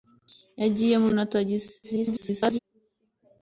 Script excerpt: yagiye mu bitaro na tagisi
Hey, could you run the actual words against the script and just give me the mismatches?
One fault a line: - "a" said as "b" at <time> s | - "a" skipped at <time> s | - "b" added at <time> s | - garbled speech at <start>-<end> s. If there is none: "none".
- "bitaro" skipped at 1.1 s
- garbled speech at 1.8-2.6 s